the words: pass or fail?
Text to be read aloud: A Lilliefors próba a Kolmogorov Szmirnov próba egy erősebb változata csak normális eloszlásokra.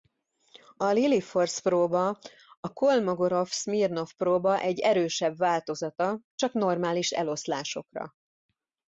pass